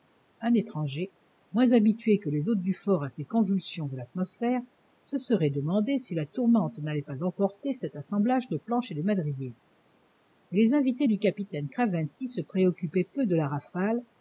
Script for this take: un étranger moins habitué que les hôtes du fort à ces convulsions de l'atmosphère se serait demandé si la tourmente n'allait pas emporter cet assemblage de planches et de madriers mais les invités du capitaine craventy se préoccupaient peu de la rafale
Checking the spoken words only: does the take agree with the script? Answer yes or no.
yes